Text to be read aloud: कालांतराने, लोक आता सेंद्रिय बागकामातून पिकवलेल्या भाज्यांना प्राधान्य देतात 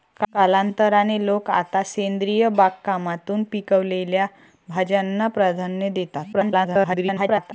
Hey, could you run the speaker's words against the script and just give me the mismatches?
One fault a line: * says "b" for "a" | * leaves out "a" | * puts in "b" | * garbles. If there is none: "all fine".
* garbles